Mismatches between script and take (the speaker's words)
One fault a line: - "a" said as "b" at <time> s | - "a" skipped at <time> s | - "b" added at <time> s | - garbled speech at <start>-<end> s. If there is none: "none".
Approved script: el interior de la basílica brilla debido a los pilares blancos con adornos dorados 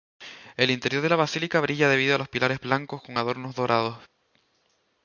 none